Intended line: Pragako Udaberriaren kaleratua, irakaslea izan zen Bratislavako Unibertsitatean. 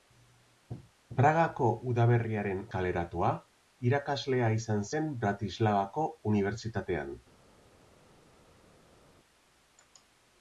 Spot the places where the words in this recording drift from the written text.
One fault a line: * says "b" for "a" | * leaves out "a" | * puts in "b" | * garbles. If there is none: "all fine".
all fine